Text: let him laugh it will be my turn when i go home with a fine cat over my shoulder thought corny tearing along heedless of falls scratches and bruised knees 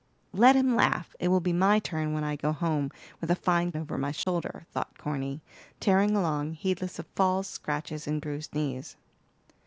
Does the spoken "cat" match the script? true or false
false